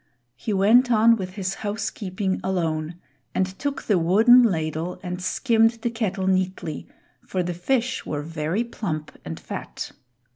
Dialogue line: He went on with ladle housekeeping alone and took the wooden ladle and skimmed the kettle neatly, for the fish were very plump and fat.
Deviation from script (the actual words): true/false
true